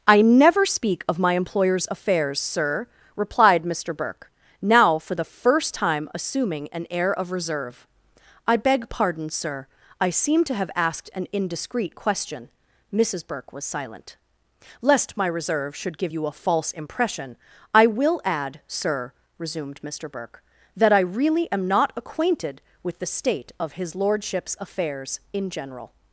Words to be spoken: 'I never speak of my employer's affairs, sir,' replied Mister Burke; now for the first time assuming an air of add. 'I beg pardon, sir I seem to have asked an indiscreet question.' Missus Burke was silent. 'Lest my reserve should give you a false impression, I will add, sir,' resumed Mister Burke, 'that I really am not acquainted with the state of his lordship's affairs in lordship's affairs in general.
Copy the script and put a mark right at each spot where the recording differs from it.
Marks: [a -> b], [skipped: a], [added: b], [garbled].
'I never speak of my employer's affairs, sir,' replied Mister Burke; now for the first time assuming an air of [add. -> reserve] 'I beg pardon, sir I seem to have asked an indiscreet question.' Missus Burke was silent. 'Lest my reserve should give you a false impression, I will add, sir,' resumed Mister Burke, 'that I really am not acquainted with the state of his lordship's affairs in [skipped: lordship's affairs in] general.